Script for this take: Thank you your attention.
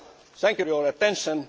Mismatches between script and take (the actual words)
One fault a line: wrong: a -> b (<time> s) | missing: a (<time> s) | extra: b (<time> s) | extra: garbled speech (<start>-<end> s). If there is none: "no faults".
no faults